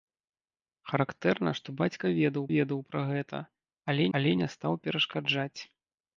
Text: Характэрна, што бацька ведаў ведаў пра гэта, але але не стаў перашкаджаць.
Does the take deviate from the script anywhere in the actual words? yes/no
no